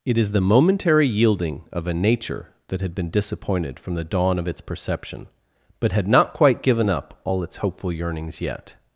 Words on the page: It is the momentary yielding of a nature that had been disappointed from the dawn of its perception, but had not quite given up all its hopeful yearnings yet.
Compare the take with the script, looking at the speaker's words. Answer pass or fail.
pass